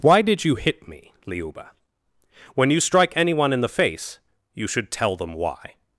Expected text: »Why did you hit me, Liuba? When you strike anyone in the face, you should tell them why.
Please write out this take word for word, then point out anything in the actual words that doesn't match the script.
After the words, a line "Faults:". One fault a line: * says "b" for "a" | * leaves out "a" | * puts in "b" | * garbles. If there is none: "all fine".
»Why did you hit me, Liuba? When you strike anyone in the face, you should tell them why.
Faults:
all fine